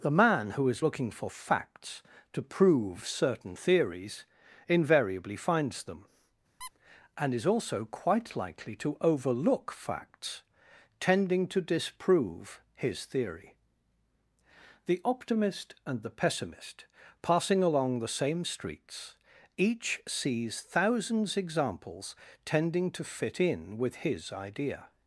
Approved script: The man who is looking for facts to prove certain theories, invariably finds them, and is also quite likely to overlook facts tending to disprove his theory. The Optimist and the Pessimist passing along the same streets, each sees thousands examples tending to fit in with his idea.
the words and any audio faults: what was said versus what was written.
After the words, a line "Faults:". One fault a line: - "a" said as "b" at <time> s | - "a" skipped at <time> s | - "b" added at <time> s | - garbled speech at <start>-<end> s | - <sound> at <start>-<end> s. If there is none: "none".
The man who is looking for facts to prove certain theories, invariably finds them, and is also quite likely to overlook facts tending to disprove his theory. The Optimist and the Pessimist passing along the same streets, each sees thousands examples tending to fit in with his idea.
Faults:
- squeak at 6.6-6.7 s